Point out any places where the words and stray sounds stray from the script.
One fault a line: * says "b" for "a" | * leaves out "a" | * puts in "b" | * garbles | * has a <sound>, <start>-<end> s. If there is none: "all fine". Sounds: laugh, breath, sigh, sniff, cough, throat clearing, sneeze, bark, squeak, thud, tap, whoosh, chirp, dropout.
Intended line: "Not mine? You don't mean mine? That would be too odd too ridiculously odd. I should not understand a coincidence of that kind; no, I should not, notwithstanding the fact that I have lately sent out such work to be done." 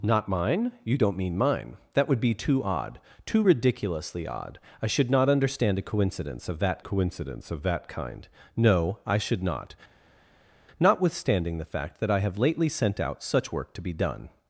* puts in "coincidence of that"